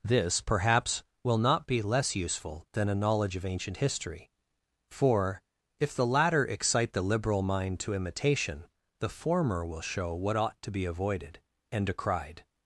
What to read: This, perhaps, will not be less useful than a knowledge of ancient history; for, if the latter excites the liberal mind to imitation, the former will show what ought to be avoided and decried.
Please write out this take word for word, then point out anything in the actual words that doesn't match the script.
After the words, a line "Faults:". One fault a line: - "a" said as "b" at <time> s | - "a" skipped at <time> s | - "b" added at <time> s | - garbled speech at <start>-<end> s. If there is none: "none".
This, perhaps, will not be less useful than a knowledge of ancient history; for, if the latter excite the liberal mind to imitation, the former will show what ought to be avoided and decried.
Faults:
- "excites" said as "excite" at 6.5 s